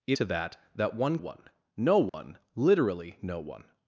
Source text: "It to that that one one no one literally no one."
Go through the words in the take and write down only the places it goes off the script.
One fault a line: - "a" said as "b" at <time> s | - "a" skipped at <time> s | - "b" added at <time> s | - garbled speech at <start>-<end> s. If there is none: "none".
none